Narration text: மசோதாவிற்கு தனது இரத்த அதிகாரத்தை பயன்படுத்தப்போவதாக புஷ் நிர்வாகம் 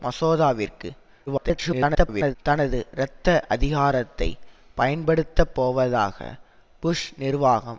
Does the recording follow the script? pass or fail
fail